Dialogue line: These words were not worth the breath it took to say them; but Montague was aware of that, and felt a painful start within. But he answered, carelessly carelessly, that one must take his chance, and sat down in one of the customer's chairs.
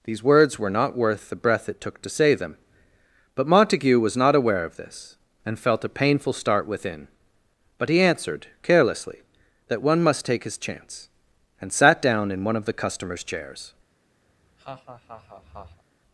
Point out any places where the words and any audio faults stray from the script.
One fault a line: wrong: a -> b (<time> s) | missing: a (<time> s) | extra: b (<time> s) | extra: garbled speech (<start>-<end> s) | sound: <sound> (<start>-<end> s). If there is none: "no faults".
extra: not (4.2 s)
wrong: that -> this (4.8 s)
missing: carelessly (9.2 s)
sound: laugh (14.3-15.8 s)